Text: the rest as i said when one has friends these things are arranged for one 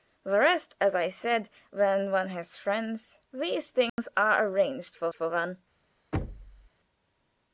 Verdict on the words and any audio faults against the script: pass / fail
fail